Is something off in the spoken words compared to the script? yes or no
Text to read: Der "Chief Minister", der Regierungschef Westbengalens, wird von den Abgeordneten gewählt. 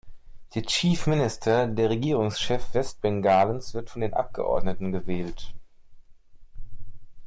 no